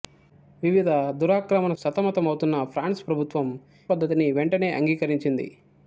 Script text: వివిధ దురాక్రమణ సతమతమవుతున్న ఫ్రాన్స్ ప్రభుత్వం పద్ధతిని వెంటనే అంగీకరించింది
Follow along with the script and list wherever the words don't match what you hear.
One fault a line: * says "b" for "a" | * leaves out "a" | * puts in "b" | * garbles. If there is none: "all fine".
all fine